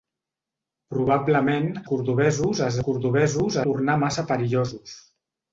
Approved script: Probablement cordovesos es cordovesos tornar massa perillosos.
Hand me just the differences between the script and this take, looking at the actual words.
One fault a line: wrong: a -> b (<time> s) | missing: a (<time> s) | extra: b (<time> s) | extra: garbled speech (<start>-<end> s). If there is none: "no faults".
no faults